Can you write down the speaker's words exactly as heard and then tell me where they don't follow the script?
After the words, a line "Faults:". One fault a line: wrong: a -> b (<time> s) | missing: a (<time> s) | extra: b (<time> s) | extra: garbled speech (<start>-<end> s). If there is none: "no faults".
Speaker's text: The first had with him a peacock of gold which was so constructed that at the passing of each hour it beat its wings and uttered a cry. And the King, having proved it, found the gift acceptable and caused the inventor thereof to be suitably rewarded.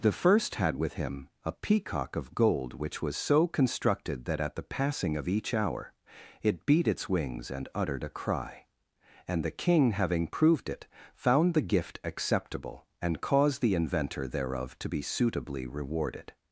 The first had with him a peacock of gold which was so constructed that at the passing of each hour it beat its wings and uttered a cry. And the King, having proved it, found the gift acceptable and caused the inventor thereof to be suitably rewarded.
Faults:
no faults